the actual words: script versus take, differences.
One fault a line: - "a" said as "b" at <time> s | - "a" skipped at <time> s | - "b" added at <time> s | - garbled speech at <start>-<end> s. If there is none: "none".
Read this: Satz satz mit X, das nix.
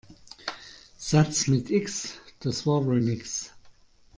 - "satz" skipped at 1.4 s
- "war wohl" added at 2.6 s